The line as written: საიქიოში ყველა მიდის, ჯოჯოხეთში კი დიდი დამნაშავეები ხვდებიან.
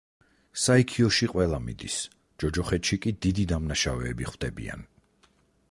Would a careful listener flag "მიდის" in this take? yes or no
no